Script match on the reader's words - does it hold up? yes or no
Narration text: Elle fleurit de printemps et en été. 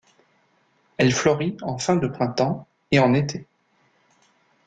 no